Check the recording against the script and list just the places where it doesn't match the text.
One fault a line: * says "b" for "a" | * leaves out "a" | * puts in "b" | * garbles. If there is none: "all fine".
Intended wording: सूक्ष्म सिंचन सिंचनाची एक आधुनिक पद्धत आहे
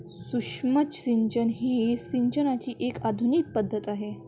* puts in "ही"